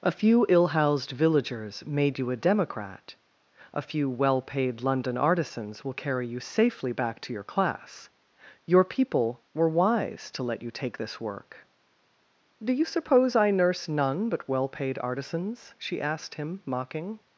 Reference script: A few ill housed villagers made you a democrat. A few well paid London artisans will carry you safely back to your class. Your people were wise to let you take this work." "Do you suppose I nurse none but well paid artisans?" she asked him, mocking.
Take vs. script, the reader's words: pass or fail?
pass